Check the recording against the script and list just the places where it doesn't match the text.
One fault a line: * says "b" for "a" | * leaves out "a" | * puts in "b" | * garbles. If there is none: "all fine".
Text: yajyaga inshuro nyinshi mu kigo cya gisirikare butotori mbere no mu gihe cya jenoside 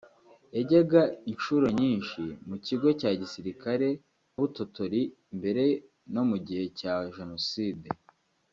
all fine